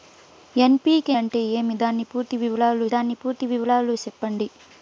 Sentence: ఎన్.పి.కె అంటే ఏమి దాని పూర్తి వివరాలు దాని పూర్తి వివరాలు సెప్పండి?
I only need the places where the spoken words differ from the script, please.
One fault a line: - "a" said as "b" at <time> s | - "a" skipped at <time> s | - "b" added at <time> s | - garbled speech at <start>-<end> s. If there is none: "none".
none